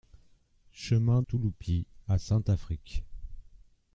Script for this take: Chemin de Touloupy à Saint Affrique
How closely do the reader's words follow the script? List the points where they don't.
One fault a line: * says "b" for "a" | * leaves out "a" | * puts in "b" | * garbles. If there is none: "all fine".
* leaves out "de"